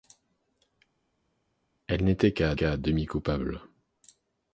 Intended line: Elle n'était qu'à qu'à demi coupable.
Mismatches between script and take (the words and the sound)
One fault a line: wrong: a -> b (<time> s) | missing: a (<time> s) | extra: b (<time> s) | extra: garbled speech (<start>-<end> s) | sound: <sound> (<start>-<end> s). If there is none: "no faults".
no faults